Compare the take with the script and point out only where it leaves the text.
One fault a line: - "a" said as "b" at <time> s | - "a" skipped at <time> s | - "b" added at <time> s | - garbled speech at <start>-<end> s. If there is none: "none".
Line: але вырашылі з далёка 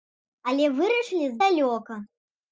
none